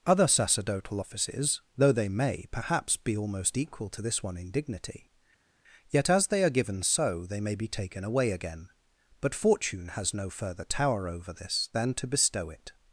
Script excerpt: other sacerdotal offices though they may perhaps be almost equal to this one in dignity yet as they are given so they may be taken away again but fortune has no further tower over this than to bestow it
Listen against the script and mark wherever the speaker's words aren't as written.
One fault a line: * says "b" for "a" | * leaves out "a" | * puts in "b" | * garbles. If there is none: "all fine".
all fine